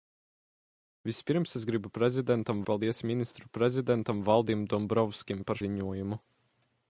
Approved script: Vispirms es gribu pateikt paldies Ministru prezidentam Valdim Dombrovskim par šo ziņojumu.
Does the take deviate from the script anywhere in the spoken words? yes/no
yes